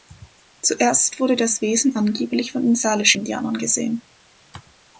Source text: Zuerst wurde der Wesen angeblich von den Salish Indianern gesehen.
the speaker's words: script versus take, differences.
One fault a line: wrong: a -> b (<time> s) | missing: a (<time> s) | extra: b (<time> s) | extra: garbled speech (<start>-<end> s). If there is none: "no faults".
wrong: der -> das (1.4 s)